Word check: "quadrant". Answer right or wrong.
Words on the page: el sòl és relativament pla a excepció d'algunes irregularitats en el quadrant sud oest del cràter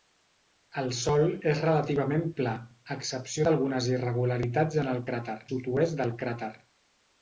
wrong